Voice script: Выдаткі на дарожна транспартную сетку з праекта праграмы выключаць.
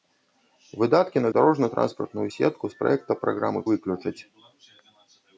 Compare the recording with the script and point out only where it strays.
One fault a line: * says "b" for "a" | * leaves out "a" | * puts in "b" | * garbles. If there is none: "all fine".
all fine